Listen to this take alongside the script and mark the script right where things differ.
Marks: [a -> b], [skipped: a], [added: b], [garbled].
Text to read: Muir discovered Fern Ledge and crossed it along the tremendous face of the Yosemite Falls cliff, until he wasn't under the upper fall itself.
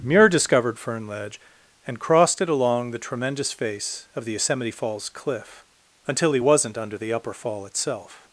Muir discovered Fern Ledge and crossed it along the tremendous face of the Yosemite Falls cliff, until he wasn't under the upper fall itself.